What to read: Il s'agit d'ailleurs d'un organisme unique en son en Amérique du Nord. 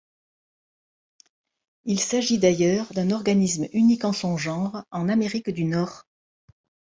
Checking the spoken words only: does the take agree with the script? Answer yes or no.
no